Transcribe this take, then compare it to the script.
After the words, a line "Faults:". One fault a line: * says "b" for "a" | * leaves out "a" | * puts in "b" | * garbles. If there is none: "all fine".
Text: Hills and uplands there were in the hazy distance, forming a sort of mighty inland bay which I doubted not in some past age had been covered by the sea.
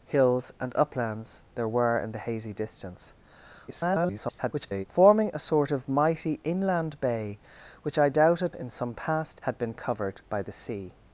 Hills and uplands there were in the hazy distance, [garbled] forming a sort of mighty inland bay which I doubted in some past had been covered by the sea.
Faults:
* garbles
* leaves out "not"
* leaves out "age"